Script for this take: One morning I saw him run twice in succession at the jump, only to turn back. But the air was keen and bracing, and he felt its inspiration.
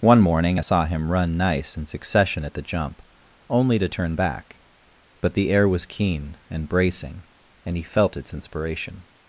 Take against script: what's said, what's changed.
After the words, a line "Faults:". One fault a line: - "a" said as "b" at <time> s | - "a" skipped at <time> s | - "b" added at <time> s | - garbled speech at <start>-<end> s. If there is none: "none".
One morning I saw him run nice in succession at the jump, only to turn back. But the air was keen and bracing, and he felt its inspiration.
Faults:
- "twice" said as "nice" at 1.4 s